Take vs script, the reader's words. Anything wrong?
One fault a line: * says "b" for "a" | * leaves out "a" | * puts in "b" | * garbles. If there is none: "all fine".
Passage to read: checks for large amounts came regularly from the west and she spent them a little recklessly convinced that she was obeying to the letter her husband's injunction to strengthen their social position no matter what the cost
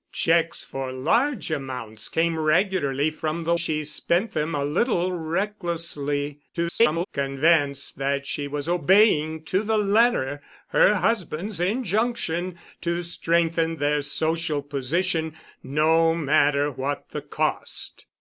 * leaves out "west and"
* garbles